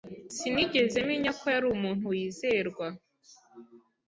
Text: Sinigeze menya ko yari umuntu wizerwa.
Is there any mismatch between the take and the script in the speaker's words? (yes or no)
no